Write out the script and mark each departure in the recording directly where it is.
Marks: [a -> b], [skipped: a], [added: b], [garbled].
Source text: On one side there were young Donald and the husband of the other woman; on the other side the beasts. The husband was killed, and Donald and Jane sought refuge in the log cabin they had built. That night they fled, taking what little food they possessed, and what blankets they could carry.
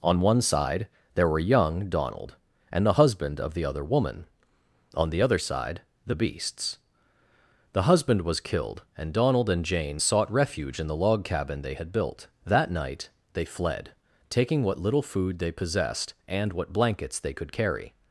On one side there were young Donald and the husband of the other woman; on the other side the beasts. The husband was killed, and Donald and Jane sought refuge in the log cabin they had built. That night they fled, taking what little food they possessed, and what blankets they could carry.